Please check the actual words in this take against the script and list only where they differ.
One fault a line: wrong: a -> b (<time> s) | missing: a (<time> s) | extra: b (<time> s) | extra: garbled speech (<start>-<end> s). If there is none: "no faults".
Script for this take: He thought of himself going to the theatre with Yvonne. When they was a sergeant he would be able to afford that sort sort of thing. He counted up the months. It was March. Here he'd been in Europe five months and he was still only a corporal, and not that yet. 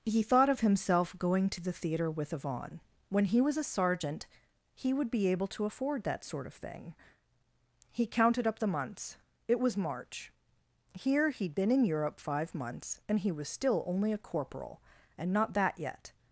wrong: they -> he (3.2 s)
missing: sort (6.5 s)